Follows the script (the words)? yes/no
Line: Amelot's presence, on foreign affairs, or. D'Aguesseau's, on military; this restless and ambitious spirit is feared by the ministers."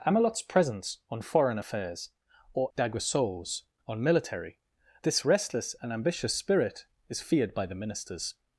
yes